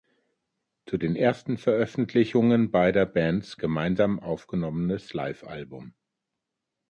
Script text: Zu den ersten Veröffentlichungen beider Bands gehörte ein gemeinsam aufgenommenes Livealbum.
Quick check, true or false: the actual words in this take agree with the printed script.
false